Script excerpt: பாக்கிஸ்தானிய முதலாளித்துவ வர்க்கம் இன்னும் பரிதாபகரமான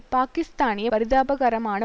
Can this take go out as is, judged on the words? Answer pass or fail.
fail